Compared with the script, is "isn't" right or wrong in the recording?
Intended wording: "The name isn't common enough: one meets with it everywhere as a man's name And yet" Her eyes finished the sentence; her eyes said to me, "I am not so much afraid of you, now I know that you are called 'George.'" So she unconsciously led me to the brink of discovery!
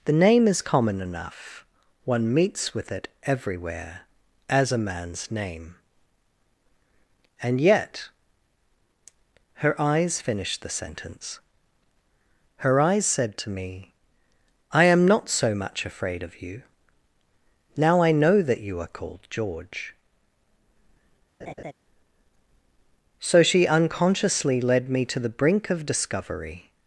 wrong